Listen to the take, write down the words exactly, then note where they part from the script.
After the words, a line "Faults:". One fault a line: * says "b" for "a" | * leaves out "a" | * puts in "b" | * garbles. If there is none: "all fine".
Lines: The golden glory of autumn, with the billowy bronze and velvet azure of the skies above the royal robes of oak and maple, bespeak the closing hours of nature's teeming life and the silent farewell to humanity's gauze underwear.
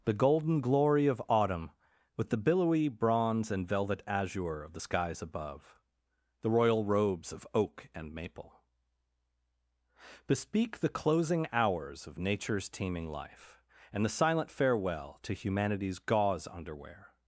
The golden glory of autumn, with the billowy bronze and velvet azure of the skies above the royal robes of oak and maple, bespeak the closing hours of nature's teeming life and the silent farewell to humanity's gauze underwear.
Faults:
all fine